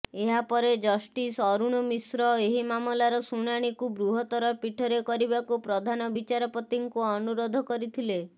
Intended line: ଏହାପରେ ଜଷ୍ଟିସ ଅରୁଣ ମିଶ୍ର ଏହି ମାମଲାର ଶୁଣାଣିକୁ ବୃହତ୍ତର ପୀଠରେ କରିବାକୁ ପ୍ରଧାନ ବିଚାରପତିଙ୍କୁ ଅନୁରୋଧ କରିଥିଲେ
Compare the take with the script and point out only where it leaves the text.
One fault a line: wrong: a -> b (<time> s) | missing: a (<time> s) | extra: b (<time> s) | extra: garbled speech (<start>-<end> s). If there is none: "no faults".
no faults